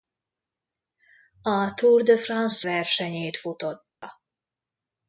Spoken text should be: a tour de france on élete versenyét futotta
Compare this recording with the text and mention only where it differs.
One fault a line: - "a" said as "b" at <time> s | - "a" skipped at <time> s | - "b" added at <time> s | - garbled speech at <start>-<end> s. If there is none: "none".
- "on élete" skipped at 2.7 s